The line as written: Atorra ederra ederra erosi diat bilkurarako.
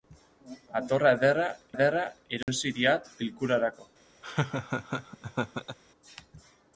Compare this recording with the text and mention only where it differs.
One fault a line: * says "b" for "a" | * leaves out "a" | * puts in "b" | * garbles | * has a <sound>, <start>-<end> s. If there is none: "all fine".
* has a dropout, 2.4-2.5 s
* has a laugh, 4.2-5.8 s